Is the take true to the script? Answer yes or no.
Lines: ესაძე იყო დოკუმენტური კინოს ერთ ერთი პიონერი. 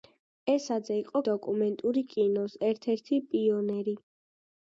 yes